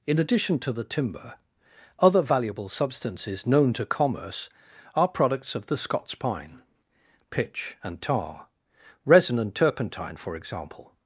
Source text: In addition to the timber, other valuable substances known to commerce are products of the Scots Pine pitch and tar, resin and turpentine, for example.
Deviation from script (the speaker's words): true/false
false